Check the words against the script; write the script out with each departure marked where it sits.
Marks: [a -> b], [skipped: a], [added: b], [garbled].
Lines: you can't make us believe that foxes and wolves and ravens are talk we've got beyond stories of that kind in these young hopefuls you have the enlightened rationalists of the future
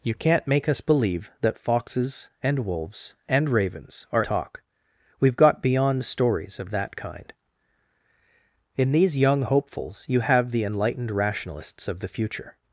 you can't make us believe that foxes and wolves and ravens are talk we've got beyond stories of that kind in these young hopefuls you have the enlightened rationalists of the future